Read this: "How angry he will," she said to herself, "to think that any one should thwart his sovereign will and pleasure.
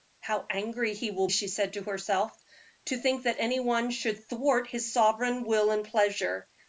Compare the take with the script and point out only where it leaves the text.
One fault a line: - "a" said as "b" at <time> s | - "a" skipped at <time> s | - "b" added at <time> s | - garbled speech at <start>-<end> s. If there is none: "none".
none